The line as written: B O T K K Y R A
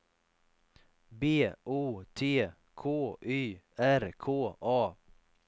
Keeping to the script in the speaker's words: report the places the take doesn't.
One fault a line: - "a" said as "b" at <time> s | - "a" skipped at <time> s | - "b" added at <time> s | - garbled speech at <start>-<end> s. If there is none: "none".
- "K" skipped at 3.2 s
- "K" added at 4.2 s